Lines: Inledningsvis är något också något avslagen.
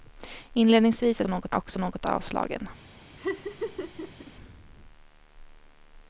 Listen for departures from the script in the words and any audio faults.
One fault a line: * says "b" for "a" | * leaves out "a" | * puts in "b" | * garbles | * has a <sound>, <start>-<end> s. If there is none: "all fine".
* has a laugh, 3.2-4.3 s